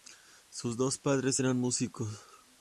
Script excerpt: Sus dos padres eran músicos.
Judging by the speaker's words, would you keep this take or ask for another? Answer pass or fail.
pass